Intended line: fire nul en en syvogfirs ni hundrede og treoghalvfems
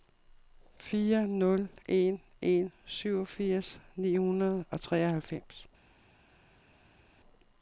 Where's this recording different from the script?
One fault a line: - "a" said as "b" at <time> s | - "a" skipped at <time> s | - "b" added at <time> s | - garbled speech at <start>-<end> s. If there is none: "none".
none